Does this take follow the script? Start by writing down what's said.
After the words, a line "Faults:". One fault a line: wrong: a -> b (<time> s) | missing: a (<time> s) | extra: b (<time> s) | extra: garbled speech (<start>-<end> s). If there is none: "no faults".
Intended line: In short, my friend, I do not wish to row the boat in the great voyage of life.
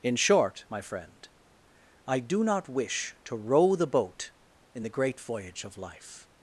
In short, my friend, I do not wish to row the boat in the great voyage of life.
Faults:
no faults